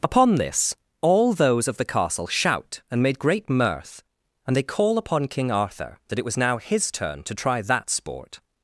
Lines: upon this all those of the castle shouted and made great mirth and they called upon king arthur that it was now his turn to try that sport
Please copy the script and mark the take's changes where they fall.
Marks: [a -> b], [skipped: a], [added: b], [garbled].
upon this all those of the castle [shouted -> shout] and made great mirth and they [called -> call] upon king arthur that it was now his turn to try that sport